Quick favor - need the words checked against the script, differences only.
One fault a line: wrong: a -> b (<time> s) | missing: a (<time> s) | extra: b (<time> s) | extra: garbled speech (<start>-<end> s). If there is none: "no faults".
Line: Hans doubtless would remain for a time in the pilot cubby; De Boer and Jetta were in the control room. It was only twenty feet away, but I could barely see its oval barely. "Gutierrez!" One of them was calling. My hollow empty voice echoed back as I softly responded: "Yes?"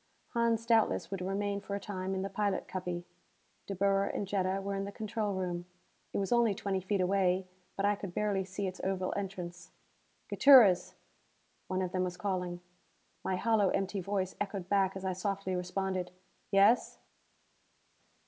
wrong: barely -> entrance (9.2 s)